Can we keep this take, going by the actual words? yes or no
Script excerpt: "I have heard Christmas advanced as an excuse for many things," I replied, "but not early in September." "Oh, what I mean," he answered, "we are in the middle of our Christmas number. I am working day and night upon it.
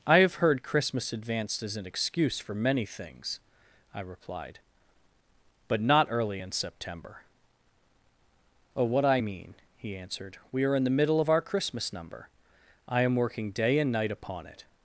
yes